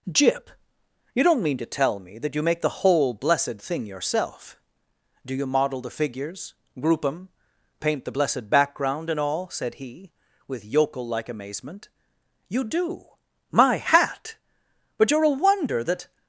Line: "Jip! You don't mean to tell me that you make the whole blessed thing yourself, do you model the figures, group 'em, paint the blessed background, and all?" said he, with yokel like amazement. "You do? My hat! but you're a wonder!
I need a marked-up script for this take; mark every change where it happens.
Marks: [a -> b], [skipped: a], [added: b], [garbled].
"Jip! You don't mean to tell me that you make the whole blessed thing yourself, do you model the figures, group 'em, paint the blessed background, and all?" said he, with yokel like amazement. "You do? My hat! but you're a wonder! [added: That]